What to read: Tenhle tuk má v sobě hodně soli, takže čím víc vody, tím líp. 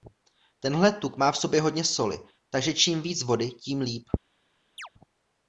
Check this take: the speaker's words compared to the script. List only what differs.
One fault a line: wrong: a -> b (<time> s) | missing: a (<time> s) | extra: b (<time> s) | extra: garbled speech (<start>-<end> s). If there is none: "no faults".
no faults